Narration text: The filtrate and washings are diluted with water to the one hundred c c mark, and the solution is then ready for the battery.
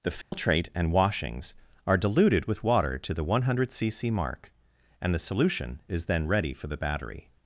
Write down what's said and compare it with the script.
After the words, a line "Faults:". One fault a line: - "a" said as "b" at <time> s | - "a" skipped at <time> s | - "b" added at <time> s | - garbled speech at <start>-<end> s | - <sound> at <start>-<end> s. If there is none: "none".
The filtrate and washings are diluted with water to the one hundred c c mark, and the solution is then ready for the battery.
Faults:
- dropout at 0.2-0.3 s